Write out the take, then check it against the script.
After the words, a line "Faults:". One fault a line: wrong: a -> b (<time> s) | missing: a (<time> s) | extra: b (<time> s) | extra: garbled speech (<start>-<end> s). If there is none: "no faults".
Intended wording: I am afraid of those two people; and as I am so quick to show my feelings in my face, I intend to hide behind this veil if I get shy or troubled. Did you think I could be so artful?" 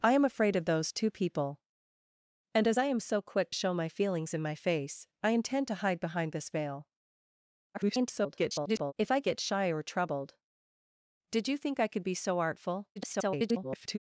I am afraid of those two people; and as I am so quick show my feelings in my face, I intend to hide behind this veil [garbled] if I get shy or troubled. Did you think I could be so artful?" [garbled]
Faults:
missing: to (3.5 s)
extra: garbled speech (7.7-8.9 s)
extra: garbled speech (13.0-14.0 s)